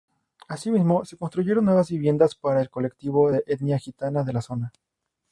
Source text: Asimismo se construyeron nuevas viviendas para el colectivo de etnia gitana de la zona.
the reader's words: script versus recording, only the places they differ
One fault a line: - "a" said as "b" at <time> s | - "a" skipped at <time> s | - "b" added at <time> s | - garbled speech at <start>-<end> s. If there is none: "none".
none